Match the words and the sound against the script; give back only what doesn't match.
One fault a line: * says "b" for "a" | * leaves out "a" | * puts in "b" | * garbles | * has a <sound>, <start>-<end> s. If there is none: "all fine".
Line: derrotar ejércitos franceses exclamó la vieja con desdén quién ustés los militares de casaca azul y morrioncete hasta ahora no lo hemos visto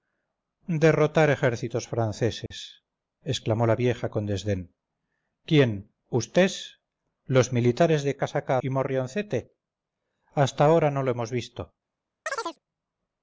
* has a dropout, 2.5-2.5 s
* leaves out "azul"
* has a chirp, 12.3-12.6 s